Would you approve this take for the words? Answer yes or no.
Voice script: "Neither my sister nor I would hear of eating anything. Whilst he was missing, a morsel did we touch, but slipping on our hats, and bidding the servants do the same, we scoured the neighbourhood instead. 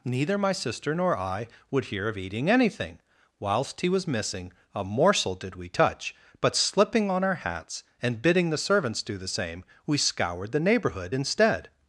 yes